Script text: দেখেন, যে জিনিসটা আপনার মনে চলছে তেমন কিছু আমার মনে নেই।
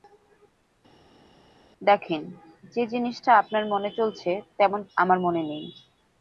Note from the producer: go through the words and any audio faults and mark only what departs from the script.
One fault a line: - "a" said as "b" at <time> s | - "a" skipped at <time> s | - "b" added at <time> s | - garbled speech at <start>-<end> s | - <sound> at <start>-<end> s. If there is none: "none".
- "কিছু" skipped at 4.8 s